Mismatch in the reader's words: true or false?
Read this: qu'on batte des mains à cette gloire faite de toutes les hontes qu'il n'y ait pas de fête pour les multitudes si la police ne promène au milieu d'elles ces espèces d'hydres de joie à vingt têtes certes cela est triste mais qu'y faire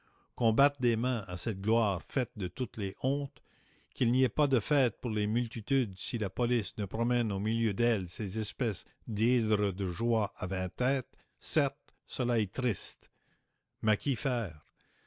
false